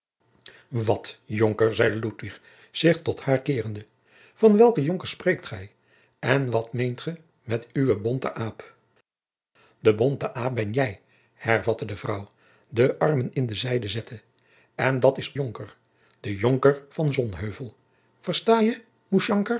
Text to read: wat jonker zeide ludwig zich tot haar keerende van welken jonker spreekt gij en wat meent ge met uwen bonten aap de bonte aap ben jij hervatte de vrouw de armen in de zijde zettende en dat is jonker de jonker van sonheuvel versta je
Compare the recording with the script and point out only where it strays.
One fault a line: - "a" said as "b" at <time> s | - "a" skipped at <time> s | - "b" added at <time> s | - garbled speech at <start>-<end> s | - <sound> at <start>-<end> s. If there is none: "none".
none